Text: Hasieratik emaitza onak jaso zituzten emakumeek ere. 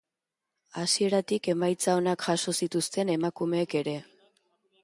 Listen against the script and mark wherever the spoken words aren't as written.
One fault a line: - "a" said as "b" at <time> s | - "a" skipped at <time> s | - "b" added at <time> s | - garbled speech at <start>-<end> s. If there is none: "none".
none